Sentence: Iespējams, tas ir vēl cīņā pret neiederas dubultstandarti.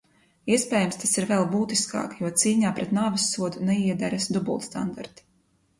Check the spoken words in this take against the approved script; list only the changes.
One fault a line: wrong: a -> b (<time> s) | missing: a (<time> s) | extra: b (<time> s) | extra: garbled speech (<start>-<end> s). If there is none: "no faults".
extra: būtiskāk jo (1.5 s)
extra: nāvessodu (3.0 s)